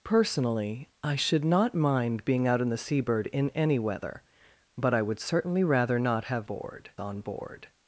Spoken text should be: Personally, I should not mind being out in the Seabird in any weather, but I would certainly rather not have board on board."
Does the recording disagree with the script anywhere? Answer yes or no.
no